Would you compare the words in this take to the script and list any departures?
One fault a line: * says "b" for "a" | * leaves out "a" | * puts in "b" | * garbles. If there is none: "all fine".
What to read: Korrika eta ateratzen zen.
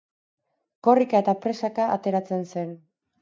* puts in "presaka"